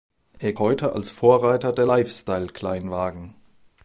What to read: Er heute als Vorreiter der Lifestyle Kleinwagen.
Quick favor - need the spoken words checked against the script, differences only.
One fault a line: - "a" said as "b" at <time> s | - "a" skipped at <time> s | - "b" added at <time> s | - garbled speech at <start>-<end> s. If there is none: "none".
none